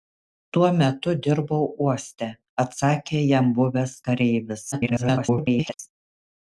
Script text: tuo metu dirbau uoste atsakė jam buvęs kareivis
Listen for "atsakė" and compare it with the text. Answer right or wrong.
right